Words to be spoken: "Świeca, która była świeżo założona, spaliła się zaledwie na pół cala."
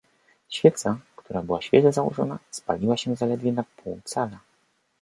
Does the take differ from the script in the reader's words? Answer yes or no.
no